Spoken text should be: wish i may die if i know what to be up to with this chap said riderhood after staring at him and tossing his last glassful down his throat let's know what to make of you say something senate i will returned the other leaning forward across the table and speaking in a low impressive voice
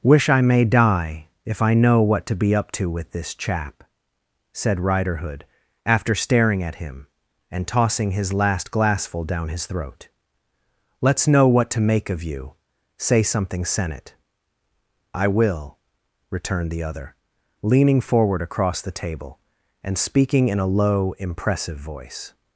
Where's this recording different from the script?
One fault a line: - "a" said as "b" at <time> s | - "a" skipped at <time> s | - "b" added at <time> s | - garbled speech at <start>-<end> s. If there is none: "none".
none